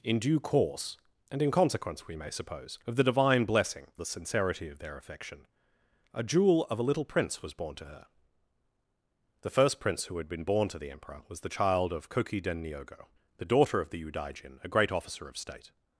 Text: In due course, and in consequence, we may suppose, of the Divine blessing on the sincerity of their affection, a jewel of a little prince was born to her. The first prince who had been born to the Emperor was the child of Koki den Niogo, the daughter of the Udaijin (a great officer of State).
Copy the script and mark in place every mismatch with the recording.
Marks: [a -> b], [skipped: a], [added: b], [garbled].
In due course, and in consequence, we may suppose, of the Divine blessing [skipped: on] the sincerity of their affection, a jewel of a little prince was born to her. The first prince who had been born to the Emperor was the child of Koki den Niogo, the daughter of the Udaijin (a great officer of State).